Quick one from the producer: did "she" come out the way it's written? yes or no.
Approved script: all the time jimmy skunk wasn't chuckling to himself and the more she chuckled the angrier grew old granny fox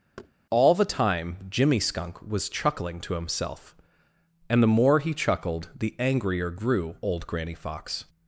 no